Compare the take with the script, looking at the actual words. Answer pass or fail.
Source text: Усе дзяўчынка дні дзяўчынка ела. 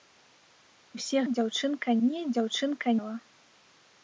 pass